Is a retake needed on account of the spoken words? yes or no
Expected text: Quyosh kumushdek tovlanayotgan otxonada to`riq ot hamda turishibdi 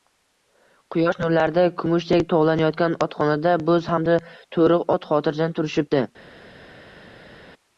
yes